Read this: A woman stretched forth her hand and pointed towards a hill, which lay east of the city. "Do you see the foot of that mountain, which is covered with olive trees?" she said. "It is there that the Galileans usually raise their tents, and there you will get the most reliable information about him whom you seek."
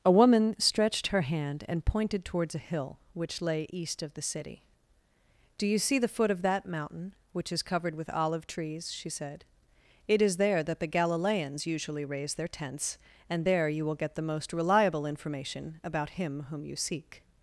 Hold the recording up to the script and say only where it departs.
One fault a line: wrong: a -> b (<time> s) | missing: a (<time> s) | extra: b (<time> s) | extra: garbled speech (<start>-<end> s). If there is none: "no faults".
missing: forth (1.1 s)